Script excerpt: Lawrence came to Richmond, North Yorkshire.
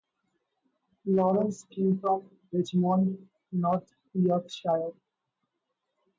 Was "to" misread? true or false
true